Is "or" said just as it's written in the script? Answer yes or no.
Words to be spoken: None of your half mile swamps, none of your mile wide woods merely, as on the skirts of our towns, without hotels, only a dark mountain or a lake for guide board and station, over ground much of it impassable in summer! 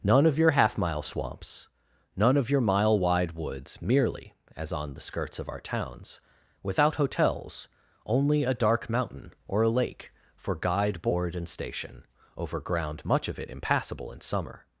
yes